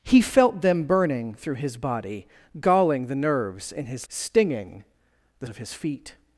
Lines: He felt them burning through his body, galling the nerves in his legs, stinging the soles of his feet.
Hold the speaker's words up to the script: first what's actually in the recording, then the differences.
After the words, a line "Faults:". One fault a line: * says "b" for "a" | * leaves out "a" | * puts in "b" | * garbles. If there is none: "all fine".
He felt them burning through his body, galling the nerves in his stinging the of his feet.
Faults:
* leaves out "legs"
* leaves out "soles"